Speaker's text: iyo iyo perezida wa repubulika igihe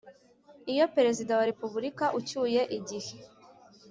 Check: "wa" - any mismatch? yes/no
no